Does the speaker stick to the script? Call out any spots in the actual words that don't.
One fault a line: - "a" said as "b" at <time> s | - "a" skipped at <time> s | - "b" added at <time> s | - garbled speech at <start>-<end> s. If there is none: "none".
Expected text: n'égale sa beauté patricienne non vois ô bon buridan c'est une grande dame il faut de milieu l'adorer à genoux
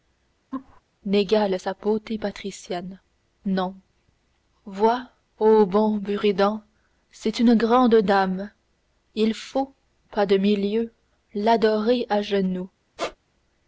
- "pas" added at 10.1 s